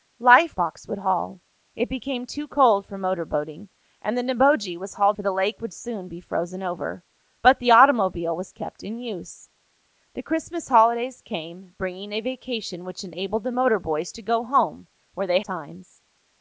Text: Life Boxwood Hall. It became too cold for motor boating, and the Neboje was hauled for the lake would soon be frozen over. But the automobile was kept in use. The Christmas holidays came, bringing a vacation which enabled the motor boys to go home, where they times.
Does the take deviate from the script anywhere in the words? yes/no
no